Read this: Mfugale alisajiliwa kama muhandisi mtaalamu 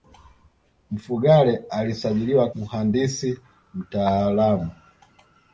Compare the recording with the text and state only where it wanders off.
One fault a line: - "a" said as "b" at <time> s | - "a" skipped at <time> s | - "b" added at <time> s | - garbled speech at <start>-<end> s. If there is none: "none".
- "kama" skipped at 2.5 s